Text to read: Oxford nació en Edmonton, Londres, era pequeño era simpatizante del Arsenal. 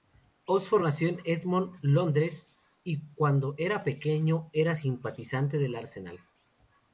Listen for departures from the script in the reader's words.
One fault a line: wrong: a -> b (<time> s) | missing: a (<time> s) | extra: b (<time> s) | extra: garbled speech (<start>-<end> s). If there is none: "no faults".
extra: y cuando (2.8 s)